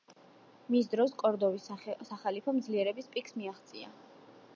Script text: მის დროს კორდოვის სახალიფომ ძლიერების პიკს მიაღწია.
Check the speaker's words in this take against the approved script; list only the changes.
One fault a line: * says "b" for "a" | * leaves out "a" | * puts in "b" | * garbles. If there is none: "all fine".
all fine